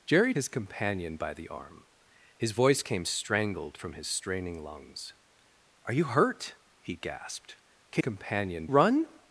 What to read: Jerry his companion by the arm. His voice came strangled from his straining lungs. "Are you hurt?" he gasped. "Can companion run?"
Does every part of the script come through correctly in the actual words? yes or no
yes